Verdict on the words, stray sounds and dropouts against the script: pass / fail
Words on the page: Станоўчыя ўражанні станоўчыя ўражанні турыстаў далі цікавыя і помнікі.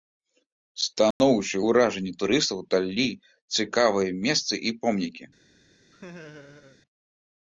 fail